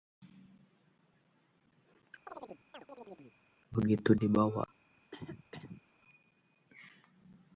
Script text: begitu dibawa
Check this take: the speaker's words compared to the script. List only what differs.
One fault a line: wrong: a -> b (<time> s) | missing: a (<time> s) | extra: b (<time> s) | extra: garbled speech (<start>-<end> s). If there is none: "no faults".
no faults